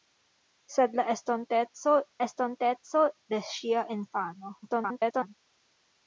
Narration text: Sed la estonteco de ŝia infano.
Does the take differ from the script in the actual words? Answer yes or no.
yes